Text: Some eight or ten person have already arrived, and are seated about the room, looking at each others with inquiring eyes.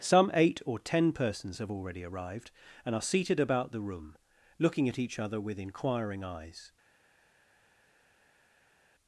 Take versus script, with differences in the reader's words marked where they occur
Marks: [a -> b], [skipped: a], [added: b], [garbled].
Some eight or ten [person -> persons] have already arrived, and are seated about the room, looking at each [others -> other] with inquiring eyes.